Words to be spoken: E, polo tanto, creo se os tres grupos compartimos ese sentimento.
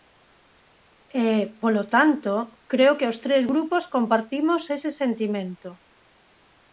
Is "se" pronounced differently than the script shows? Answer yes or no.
yes